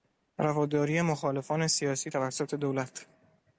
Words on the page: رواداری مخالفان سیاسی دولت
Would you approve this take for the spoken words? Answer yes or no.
no